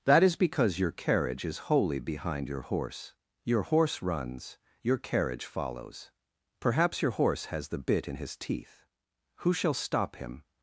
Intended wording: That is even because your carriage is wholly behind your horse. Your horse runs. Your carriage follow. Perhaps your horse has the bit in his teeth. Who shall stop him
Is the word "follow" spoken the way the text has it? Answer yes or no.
no